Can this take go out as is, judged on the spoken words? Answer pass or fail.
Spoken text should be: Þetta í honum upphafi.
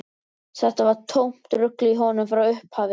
fail